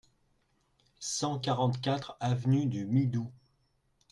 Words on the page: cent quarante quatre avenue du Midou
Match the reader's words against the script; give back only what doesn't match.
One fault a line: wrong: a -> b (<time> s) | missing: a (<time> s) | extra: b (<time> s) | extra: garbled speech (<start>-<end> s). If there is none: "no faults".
no faults